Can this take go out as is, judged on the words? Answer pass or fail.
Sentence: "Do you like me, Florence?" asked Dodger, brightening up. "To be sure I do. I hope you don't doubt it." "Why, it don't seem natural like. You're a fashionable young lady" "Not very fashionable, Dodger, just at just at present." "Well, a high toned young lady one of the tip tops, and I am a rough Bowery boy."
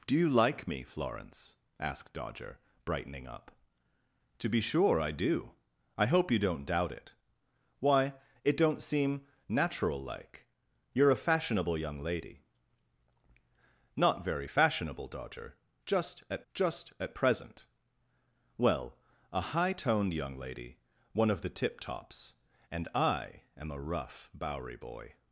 pass